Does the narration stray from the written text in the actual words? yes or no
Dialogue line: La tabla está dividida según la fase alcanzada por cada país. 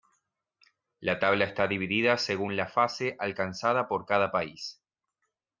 no